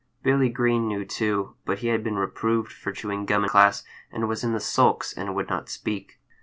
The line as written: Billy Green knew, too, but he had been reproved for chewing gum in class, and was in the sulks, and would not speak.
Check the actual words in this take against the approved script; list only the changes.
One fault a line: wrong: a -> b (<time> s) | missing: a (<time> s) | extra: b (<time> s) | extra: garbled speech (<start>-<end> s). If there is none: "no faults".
missing: in (3.5 s)